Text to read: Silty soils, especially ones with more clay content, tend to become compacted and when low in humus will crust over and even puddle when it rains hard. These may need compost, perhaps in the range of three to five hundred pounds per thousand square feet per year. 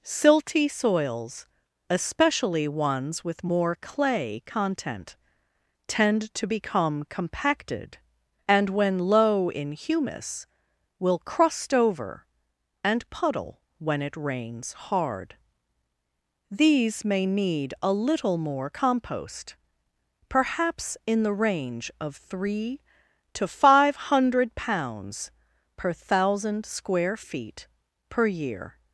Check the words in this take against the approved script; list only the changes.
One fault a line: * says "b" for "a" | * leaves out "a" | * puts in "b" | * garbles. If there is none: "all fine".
* leaves out "even"
* puts in "a little more"